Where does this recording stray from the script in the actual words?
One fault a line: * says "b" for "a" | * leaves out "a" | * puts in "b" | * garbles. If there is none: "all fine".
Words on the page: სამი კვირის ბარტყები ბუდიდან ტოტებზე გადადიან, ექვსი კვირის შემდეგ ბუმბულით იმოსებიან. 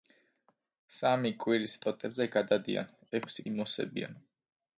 * leaves out "ბარტყები ბუდიდან"
* leaves out "კვირის შემდეგ ბუმბულით"